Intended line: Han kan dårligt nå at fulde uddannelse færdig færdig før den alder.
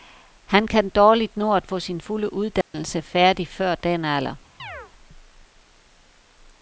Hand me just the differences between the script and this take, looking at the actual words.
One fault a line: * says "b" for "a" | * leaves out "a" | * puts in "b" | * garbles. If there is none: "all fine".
* puts in "få sin"
* leaves out "færdig"